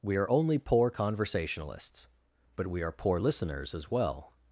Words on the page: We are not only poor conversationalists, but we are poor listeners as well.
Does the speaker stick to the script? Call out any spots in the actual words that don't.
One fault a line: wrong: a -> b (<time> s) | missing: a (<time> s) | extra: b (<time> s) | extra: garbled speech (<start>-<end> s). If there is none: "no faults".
missing: not (0.3 s)